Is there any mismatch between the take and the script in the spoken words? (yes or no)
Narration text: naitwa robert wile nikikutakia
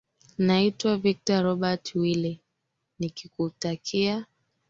yes